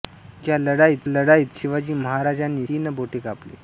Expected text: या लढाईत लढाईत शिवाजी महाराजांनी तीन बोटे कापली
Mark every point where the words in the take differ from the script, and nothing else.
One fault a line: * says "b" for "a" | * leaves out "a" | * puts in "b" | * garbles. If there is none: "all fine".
all fine